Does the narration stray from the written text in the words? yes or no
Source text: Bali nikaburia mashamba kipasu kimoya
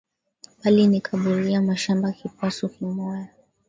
no